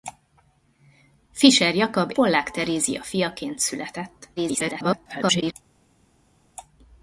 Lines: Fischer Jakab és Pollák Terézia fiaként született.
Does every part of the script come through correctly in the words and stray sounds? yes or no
no